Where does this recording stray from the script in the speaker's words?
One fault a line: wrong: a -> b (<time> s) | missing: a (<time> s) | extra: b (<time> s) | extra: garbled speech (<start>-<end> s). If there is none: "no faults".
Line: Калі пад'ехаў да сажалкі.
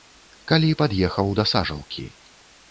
no faults